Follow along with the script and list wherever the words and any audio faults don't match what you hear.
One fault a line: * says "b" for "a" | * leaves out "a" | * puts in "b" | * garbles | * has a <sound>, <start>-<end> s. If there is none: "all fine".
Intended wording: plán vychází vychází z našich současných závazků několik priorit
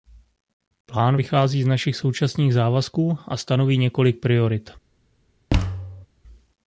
* leaves out "vychází"
* puts in "a stanoví"
* has a thud, 5.5-6.1 s